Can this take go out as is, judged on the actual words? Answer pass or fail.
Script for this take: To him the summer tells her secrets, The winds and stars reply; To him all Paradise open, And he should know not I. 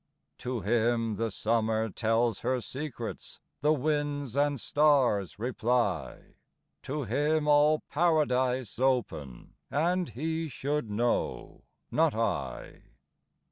pass